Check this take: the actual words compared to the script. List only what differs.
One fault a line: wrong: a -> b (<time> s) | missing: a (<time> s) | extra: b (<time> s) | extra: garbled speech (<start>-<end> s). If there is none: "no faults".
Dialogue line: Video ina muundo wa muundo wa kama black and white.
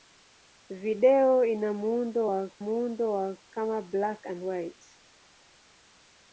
no faults